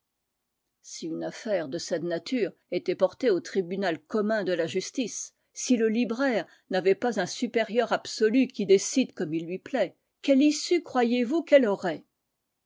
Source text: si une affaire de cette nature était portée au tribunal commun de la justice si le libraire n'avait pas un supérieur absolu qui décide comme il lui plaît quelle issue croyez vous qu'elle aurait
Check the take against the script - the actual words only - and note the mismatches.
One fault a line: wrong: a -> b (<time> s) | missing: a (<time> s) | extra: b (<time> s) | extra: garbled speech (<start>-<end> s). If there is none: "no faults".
no faults